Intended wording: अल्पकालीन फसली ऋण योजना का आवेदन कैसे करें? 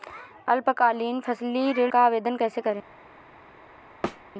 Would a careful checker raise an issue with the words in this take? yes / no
yes